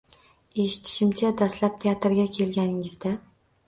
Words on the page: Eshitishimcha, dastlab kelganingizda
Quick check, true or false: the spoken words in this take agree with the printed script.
false